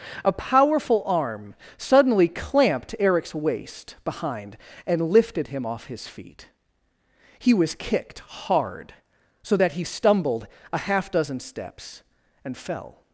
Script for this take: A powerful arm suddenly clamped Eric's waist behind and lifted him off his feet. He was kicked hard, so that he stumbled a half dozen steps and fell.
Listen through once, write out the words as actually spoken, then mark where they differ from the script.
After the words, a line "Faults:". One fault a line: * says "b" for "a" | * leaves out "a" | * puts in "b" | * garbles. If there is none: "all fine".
A powerful arm suddenly clamped Eric's waist behind and lifted him off his feet. He was kicked hard, so that he stumbled a half dozen steps and fell.
Faults:
all fine